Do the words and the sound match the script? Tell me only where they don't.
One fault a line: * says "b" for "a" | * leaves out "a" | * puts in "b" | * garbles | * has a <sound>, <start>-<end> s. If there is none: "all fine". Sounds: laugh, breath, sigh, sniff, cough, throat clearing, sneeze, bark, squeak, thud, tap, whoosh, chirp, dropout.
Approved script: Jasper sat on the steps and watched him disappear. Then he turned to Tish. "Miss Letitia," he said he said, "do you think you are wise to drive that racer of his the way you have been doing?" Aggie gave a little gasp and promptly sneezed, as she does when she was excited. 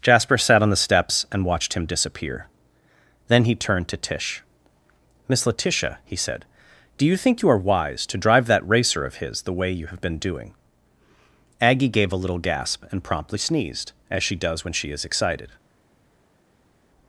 * leaves out "he said"
* says "is" for "was"